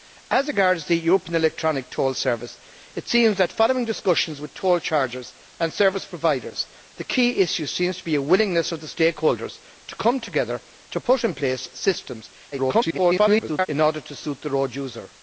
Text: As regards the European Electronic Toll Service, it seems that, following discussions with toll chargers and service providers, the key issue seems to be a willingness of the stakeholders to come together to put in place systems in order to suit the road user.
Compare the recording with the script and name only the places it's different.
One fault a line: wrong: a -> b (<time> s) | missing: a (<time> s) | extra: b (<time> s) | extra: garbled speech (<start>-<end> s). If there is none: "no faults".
extra: garbled speech (12.5-13.7 s)